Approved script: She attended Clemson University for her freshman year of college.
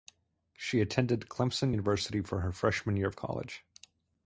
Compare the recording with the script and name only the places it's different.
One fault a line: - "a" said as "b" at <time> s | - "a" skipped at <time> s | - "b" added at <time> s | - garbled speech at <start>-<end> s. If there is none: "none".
none